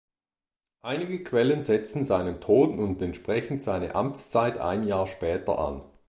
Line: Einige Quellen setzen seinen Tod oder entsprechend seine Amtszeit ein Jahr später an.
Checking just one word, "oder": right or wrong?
wrong